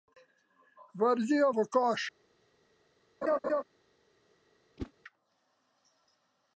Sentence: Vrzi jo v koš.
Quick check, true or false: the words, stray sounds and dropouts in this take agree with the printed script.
false